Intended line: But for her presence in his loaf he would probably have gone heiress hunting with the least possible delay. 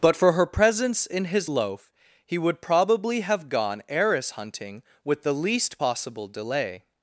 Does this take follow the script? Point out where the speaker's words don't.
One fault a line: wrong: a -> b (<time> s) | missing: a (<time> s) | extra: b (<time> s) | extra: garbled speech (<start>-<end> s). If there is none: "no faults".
no faults